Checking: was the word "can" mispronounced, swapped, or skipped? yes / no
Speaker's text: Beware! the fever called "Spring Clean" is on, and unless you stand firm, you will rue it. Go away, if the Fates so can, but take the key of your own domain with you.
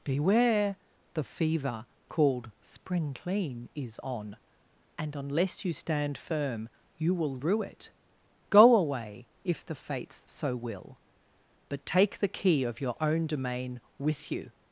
yes